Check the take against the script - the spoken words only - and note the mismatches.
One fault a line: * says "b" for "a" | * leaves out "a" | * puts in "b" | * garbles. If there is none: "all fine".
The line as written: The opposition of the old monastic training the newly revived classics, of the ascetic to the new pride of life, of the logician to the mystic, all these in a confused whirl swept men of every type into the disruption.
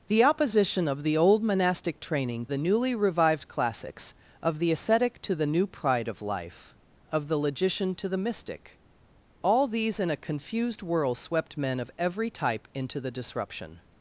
all fine